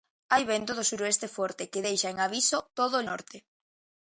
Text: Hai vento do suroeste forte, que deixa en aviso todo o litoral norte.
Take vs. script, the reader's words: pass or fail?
fail